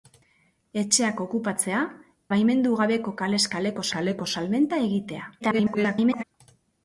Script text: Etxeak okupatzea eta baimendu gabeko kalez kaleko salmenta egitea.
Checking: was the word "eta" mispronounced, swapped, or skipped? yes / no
yes